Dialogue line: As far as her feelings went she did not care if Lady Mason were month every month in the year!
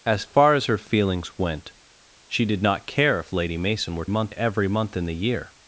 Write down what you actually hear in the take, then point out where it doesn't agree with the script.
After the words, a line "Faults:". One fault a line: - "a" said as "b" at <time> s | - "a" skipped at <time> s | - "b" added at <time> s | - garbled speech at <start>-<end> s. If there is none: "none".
As far as her feelings went she did not care if Lady Mason were month every month in the year!
Faults:
none